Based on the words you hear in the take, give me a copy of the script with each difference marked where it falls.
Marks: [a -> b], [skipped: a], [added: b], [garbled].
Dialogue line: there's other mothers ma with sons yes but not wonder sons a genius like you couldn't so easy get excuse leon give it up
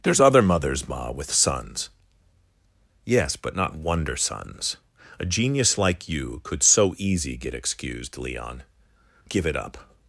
there's other mothers ma with sons yes but not wonder sons a genius like you [couldn't -> could] so easy get [excuse -> excused] leon give it up